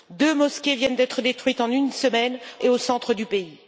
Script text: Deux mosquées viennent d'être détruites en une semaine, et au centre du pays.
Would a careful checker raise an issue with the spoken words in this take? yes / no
no